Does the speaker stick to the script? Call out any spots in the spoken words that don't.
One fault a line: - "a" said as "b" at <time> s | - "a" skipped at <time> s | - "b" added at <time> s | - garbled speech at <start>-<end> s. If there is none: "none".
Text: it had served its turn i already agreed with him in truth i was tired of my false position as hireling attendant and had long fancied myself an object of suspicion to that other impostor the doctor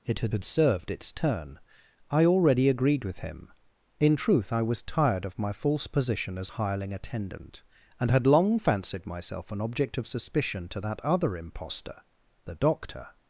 - "had" added at 0.3 s